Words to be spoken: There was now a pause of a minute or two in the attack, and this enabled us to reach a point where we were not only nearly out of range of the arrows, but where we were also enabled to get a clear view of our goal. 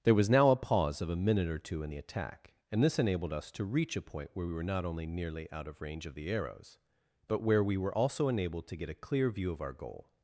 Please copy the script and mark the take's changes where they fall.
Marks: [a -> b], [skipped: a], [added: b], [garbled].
There was now a pause of a minute or two in the attack, and this enabled us to reach a point where we were not only nearly out of range of the arrows, but where we were also enabled to get a clear view of our goal.